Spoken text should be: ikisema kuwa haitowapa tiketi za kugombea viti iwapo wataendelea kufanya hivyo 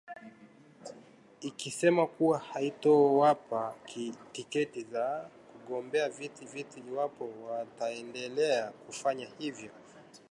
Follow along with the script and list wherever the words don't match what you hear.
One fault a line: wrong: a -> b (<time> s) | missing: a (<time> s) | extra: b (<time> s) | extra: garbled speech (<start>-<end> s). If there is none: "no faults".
extra: viti (6.4 s)